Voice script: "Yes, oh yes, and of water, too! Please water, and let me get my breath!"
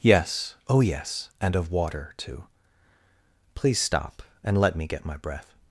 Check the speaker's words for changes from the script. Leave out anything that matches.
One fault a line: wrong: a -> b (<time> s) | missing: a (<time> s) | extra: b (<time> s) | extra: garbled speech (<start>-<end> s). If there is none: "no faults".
wrong: water -> stop (3.8 s)